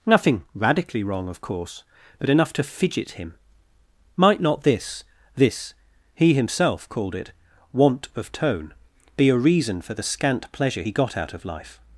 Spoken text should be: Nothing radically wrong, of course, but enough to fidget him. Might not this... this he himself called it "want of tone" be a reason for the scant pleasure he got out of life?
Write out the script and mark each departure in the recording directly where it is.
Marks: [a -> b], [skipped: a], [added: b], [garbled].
Nothing radically wrong, of course, but enough to fidget him. Might not this... this he himself called it "want of tone" be a reason for the scant pleasure he got out of life?